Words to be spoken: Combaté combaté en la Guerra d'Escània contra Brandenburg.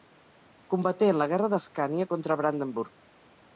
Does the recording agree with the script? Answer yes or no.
no